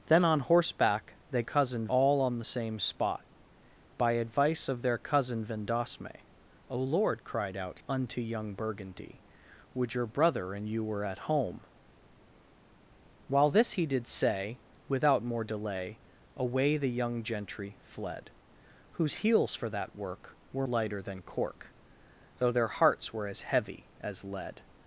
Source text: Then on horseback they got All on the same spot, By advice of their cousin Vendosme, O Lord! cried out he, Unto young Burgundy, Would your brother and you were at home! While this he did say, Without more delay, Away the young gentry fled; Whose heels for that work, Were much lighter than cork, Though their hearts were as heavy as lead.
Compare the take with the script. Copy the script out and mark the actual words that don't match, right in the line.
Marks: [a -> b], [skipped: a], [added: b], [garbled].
Then on horseback they [got -> cousin] All on the same spot, By advice of their cousin Vendosme, O Lord! cried out [skipped: he,] Unto young Burgundy, Would your brother and you were at home! While this he did say, Without more delay, Away the young gentry fled; Whose heels for that work, Were [skipped: much] lighter than cork, Though their hearts were as heavy as lead.